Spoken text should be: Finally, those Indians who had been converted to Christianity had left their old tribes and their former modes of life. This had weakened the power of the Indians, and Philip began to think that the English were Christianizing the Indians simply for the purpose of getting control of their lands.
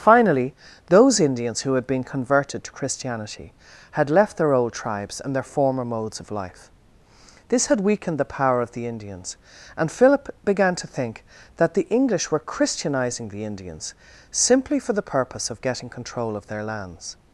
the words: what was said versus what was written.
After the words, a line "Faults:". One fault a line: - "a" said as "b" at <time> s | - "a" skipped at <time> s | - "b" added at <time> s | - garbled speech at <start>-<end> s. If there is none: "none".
Finally, those Indians who had been converted to Christianity had left their old tribes and their former modes of life. This had weakened the power of the Indians, and Philip began to think that the English were Christianizing the Indians simply for the purpose of getting control of their lands.
Faults:
none